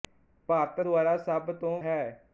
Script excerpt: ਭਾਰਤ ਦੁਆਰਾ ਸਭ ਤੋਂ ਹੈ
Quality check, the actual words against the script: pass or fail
pass